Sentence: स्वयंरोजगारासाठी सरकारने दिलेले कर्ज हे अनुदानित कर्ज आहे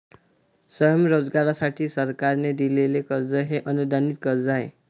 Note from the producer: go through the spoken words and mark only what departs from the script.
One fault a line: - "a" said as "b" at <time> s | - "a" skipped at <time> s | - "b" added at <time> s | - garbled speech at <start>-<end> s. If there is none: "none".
none